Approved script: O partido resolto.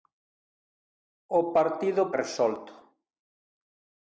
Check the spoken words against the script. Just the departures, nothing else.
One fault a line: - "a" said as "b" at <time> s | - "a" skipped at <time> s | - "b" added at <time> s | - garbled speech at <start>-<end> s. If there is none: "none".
none